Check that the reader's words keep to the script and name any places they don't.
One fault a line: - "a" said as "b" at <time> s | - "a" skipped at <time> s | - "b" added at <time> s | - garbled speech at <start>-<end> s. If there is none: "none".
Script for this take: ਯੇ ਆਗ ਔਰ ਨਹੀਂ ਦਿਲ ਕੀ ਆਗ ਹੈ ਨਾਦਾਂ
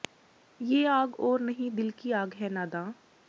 none